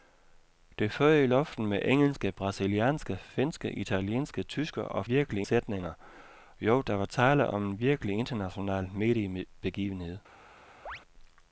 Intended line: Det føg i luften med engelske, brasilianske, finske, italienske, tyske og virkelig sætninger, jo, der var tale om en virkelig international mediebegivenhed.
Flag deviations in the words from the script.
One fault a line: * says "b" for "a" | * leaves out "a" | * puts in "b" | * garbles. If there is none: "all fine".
all fine